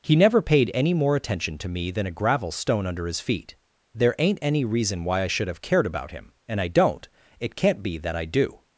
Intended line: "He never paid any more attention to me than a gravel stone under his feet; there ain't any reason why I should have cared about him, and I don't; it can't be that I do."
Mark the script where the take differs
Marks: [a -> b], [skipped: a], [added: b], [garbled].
"He never paid any more attention to me than a gravel stone under his feet; there ain't any reason why I should have cared about him, and I don't; it can't be that I do."